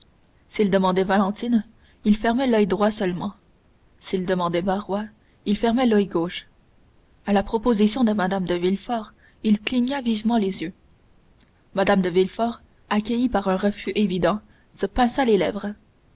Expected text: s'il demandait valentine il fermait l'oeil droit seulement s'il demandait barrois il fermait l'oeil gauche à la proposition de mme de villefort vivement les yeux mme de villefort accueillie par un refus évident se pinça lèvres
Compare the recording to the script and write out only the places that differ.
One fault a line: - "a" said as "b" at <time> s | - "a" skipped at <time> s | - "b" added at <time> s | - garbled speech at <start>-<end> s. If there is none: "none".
- "il cligna" added at 9.4 s
- "les" added at 15.2 s